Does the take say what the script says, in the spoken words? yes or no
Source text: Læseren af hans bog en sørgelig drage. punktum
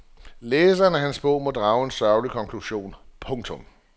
no